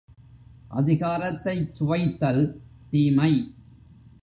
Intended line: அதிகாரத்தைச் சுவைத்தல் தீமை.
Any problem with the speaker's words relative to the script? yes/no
no